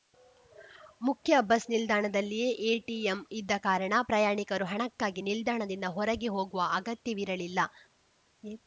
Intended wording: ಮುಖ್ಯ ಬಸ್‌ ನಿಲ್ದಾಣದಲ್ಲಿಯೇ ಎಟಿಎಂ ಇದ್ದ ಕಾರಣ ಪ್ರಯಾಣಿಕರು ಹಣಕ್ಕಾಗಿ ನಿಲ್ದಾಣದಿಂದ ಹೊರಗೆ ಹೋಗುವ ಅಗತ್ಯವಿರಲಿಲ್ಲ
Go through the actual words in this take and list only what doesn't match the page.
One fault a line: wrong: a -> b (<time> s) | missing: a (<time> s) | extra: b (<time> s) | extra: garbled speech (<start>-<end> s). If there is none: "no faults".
no faults